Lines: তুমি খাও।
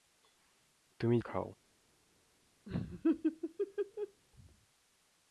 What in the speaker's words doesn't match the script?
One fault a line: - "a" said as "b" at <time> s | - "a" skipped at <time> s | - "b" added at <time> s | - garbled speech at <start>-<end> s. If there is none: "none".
none